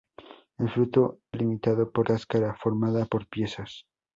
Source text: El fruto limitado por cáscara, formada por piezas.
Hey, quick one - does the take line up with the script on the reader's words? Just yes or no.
yes